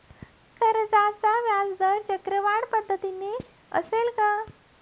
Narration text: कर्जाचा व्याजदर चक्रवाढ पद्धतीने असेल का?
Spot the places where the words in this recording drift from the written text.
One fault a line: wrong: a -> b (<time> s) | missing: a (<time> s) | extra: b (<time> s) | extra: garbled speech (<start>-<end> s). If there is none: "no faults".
no faults